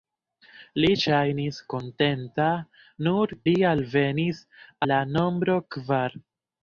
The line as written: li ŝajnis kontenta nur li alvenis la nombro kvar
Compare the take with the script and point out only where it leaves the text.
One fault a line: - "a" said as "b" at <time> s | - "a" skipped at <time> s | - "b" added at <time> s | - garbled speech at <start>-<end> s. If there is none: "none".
none